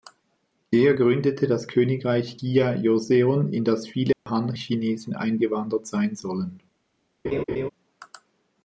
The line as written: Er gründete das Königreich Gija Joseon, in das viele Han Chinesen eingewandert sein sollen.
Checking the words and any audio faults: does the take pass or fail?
fail